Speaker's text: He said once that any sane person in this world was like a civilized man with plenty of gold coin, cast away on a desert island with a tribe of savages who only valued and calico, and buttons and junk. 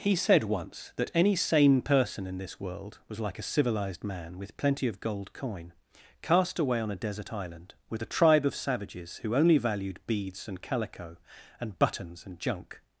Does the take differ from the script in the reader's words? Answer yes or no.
yes